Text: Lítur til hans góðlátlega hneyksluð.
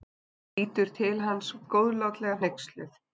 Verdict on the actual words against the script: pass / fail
pass